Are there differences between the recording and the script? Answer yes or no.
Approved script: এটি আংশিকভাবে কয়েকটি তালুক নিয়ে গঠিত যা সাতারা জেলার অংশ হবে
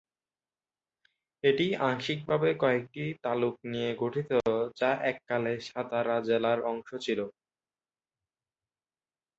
yes